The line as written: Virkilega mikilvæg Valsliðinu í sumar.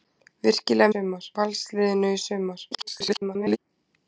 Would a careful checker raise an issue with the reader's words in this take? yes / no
yes